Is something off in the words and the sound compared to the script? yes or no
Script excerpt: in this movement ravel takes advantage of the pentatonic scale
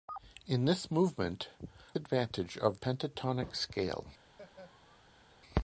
yes